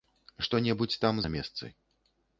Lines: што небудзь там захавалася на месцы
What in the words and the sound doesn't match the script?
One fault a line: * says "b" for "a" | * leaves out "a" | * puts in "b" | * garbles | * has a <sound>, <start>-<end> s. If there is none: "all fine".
* leaves out "захавалася"